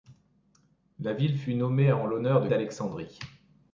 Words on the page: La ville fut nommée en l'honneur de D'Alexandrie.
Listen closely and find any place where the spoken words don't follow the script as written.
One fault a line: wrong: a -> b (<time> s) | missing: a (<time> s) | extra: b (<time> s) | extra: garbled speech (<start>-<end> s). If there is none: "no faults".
no faults